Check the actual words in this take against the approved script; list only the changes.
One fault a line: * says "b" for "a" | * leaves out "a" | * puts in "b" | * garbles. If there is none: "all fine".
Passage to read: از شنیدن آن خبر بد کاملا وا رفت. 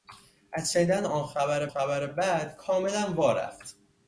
* puts in "خبر"